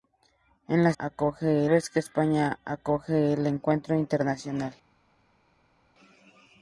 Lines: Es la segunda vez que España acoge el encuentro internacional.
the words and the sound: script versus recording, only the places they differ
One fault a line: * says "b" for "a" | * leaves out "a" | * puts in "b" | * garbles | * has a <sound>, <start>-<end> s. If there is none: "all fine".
* says "acoge" for "segunda"